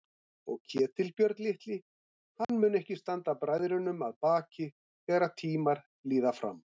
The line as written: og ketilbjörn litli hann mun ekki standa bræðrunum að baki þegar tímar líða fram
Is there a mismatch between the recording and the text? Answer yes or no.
no